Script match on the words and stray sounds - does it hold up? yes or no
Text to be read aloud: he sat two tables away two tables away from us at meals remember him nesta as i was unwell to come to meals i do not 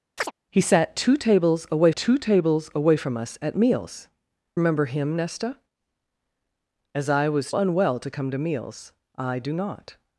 no